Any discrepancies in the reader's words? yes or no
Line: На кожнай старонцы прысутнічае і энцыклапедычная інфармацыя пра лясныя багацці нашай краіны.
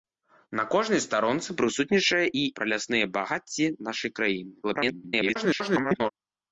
yes